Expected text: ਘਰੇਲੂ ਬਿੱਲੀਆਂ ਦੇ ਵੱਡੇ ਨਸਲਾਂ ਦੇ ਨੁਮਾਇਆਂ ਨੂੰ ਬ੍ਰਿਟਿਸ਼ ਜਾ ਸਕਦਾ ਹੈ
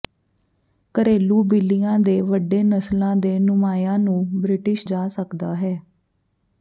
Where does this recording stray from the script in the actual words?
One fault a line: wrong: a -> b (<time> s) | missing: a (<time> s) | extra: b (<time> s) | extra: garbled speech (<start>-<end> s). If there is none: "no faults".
no faults